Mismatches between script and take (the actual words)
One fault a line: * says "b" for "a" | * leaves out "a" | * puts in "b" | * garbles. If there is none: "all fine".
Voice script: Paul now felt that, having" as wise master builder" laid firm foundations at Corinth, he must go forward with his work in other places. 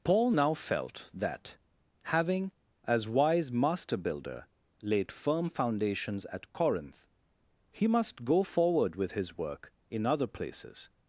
all fine